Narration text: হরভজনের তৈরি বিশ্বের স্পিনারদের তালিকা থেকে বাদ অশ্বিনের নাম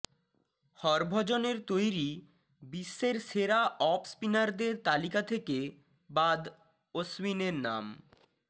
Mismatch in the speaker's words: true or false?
true